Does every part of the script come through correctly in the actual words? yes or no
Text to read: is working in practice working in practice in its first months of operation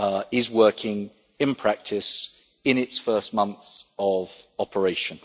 no